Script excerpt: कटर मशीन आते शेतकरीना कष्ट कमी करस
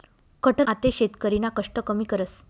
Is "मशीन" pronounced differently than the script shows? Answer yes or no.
yes